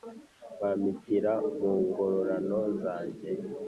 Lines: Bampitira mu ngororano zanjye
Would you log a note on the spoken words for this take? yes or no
no